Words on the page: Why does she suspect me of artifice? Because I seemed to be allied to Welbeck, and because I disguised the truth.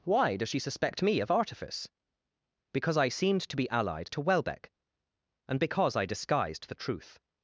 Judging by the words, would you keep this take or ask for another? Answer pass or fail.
pass